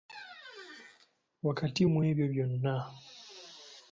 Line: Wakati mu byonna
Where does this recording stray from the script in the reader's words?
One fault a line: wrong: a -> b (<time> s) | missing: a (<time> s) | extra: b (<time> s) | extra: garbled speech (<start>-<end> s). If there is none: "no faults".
extra: ebyo (2.1 s)